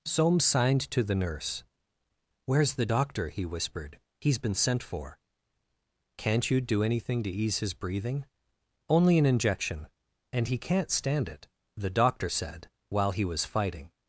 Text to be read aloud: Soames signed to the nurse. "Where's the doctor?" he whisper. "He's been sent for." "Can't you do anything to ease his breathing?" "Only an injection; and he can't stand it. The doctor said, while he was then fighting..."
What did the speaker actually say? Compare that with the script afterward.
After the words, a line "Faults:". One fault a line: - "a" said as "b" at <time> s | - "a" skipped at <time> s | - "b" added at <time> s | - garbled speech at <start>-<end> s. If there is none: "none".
Soames signed to the nurse. "Where's the doctor?" he whispered. "He's been sent for." "Can't you do anything to ease his breathing?" "Only an injection; and he can't stand it. The doctor said, while he was fighting..."
Faults:
- "whisper" said as "whispered" at 3.4 s
- "then" skipped at 13.4 s